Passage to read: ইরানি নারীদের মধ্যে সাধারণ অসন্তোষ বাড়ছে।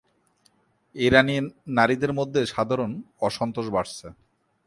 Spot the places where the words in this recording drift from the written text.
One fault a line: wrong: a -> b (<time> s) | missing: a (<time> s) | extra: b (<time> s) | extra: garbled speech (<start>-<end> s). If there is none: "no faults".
no faults